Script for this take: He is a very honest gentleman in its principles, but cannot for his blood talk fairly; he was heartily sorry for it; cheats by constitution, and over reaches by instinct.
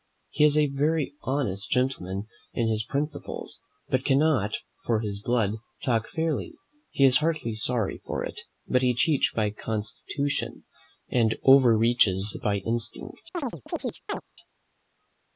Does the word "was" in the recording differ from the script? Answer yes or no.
yes